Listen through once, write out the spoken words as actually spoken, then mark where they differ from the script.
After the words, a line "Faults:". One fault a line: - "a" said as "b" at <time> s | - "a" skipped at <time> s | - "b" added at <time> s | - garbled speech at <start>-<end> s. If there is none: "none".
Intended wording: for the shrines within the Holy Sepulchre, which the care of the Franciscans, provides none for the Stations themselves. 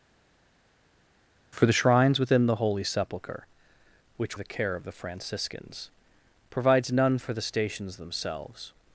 for the shrines within the Holy Sepulchre, which the care of the Franciscans, provides none for the Stations themselves.
Faults:
none